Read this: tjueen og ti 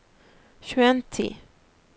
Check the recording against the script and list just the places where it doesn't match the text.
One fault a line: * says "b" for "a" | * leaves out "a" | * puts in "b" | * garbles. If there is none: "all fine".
all fine